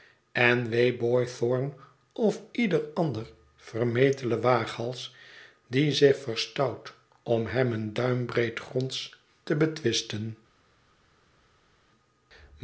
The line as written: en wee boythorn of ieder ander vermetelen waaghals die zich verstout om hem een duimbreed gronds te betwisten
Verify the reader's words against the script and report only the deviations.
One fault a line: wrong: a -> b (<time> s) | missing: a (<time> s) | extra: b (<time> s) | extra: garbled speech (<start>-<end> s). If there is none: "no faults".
no faults